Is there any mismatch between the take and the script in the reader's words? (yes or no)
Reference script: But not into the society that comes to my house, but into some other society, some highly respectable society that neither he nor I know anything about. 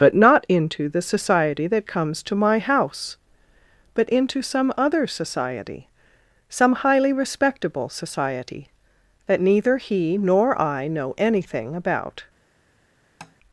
no